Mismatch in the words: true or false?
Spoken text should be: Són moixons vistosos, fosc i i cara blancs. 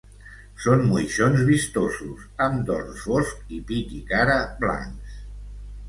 true